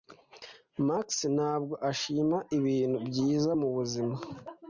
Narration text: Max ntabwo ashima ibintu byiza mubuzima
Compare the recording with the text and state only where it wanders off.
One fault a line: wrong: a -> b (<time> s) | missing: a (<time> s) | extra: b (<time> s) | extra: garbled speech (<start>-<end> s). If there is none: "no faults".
no faults